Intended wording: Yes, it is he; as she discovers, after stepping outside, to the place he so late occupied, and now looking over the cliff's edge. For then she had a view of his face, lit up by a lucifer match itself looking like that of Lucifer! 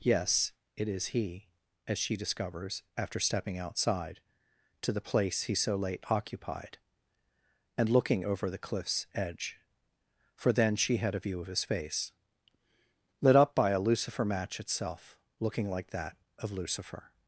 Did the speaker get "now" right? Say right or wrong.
wrong